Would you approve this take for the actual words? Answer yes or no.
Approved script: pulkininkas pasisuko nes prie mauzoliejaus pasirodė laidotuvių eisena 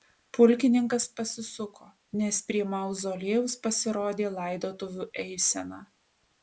yes